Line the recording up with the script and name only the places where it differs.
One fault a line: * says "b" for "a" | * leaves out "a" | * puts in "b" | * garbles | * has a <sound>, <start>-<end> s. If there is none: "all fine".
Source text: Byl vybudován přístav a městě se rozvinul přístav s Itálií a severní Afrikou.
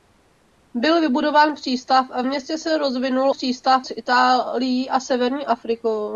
all fine